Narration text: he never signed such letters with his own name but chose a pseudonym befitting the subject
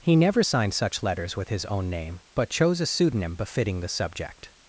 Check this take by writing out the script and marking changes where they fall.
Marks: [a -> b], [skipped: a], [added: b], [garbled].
he never signed such letters with his own name but chose a pseudonym befitting the subject